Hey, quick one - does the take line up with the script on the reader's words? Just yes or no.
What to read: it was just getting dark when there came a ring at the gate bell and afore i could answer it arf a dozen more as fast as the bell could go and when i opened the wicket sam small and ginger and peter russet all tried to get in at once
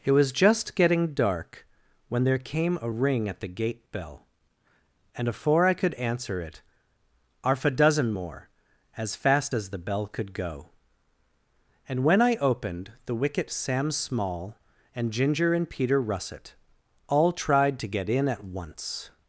yes